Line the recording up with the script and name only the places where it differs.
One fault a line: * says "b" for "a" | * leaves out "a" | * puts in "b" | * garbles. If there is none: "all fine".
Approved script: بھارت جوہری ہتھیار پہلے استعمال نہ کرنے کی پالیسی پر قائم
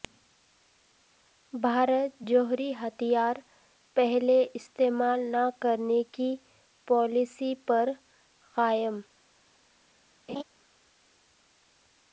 all fine